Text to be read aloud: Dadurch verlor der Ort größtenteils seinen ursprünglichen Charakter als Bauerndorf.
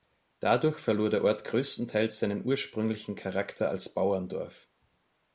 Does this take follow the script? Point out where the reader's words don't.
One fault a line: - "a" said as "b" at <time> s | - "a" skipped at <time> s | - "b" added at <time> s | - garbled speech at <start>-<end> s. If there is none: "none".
none